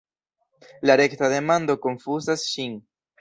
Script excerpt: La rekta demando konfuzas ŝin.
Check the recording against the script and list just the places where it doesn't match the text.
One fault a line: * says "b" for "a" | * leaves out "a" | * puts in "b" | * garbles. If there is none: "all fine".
all fine